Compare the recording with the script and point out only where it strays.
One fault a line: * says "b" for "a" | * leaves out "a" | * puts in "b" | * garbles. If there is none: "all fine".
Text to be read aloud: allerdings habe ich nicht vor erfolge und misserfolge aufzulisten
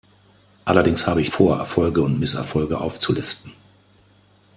* leaves out "nicht"